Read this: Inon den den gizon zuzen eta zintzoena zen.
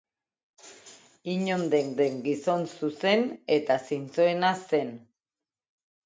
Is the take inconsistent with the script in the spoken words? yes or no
no